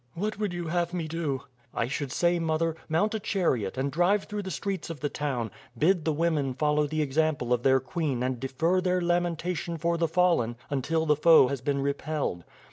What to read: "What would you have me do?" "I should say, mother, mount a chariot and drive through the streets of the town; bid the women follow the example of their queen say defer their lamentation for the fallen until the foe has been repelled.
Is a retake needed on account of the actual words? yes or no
yes